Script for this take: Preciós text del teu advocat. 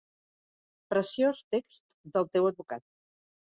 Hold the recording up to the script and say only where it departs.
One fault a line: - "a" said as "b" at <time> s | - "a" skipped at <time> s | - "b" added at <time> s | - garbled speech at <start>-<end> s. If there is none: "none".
none